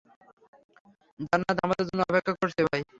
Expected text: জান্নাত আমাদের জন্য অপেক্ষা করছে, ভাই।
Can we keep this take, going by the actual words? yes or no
yes